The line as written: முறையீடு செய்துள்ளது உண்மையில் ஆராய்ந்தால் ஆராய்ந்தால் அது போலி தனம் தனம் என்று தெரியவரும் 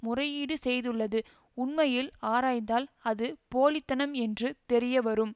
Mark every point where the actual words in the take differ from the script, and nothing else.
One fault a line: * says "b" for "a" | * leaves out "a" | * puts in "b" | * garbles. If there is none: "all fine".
* leaves out "ஆராய்ந்தால்"
* leaves out "தனம்"